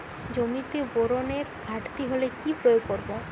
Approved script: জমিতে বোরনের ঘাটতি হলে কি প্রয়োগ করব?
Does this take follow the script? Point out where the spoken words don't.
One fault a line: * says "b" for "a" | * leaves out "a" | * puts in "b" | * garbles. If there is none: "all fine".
all fine